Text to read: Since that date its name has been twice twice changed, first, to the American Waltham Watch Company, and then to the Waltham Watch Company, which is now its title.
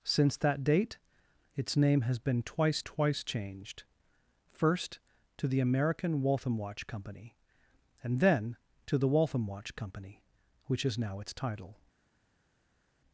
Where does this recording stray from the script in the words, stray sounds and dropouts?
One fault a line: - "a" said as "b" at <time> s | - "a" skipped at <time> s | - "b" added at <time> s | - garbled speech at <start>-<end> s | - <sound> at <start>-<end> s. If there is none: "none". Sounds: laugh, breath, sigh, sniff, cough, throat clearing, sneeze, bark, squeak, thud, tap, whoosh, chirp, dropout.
none